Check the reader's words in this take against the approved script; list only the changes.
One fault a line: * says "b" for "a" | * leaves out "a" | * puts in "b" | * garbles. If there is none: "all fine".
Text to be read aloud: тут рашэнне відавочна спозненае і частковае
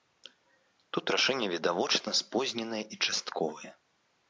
all fine